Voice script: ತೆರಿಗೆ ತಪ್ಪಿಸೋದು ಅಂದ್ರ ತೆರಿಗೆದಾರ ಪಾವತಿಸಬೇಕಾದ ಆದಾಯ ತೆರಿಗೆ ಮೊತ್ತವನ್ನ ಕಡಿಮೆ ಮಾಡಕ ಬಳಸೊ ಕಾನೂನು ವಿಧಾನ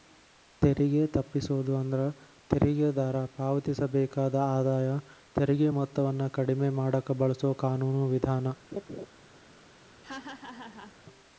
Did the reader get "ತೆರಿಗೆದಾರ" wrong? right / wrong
right